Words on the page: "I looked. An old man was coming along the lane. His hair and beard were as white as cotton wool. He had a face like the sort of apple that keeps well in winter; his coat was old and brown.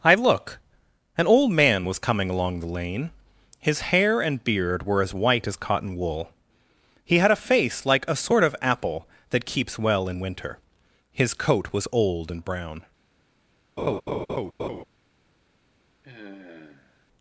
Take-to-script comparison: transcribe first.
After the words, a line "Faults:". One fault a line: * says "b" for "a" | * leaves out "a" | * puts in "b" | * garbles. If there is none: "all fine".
"I look. An old man was coming along the lane. His hair and beard were as white as cotton wool. He had a face like a sort of apple that keeps well in winter; his coat was old and brown.
Faults:
* says "look" for "looked"
* says "a" for "the"